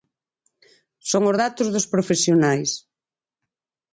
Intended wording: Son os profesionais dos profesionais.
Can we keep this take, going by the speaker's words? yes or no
no